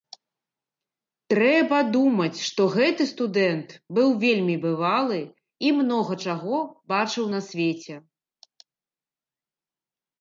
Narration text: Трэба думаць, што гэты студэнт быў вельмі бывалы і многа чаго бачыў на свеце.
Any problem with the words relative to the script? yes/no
no